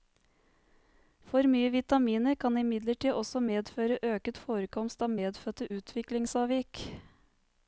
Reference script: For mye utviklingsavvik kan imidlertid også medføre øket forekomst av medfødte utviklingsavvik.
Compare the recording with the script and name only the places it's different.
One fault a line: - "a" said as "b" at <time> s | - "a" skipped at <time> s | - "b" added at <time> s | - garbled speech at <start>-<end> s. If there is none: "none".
- "utviklingsavvik" said as "vitaminer" at 1.8 s